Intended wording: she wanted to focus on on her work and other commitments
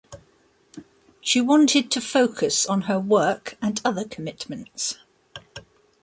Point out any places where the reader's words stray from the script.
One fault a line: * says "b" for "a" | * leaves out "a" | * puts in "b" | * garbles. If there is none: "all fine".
* leaves out "on"